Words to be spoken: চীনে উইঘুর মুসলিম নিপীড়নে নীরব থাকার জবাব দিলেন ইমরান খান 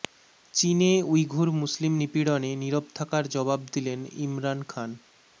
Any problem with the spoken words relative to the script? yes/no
no